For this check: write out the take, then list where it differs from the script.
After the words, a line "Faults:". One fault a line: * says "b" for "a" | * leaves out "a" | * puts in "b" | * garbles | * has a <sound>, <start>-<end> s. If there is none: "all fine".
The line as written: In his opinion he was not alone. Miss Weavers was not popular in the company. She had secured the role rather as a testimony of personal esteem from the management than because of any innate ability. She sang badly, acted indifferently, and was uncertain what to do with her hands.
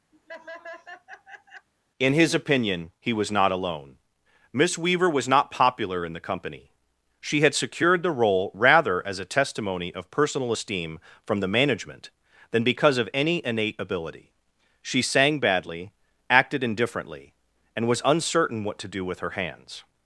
In his opinion he was not alone. Miss Weaver was not popular in the company. She had secured the role rather as a testimony of personal esteem from the management than because of any innate ability. She sang badly, acted indifferently, and was uncertain what to do with her hands.
Faults:
* has a laugh, 0.1-1.7 s
* says "Weaver" for "Weavers"